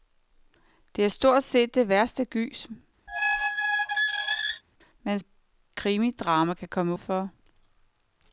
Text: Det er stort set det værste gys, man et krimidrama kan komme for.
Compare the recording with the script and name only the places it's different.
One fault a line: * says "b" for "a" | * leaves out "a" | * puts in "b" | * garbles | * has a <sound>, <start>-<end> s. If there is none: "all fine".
* has a squeak, 3.1-4.6 s